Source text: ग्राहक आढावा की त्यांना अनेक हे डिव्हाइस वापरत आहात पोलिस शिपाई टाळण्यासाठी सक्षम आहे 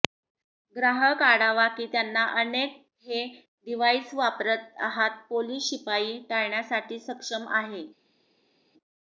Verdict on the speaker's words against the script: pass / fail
pass